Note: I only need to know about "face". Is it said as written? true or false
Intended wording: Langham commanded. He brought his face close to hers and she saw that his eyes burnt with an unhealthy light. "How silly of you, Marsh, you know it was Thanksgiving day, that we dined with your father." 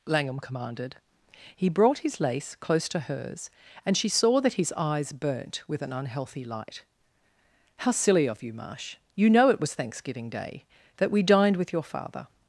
false